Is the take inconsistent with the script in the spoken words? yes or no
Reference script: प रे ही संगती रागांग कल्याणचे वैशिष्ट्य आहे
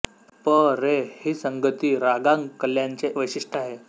no